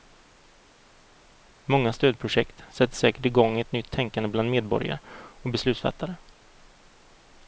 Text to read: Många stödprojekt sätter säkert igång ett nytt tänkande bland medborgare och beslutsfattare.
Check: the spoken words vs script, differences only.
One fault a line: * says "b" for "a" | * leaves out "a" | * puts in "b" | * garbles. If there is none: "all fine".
all fine